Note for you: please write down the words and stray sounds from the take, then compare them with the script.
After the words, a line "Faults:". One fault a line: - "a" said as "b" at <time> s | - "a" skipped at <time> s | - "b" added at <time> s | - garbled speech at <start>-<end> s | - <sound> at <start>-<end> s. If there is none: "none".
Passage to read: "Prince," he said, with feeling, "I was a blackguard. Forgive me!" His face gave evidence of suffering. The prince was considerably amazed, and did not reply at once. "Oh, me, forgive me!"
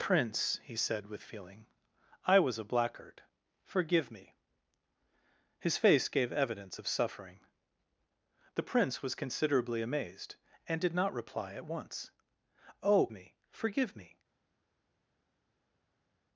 "Prince," he said, with feeling, "I was a blackguard. Forgive me!" His face gave evidence of suffering. The prince was considerably amazed, and did not reply at once. "Oh, me, forgive me!"
Faults:
none